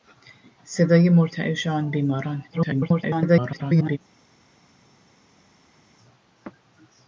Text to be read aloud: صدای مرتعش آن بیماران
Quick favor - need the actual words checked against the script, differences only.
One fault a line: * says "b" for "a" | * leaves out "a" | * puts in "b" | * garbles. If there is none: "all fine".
* garbles